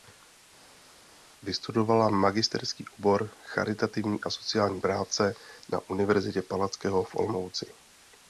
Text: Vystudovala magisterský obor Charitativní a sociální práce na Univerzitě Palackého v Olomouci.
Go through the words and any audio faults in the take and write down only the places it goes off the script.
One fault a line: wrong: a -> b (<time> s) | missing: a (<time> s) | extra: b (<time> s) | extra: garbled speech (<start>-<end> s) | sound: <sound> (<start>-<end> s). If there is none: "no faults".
no faults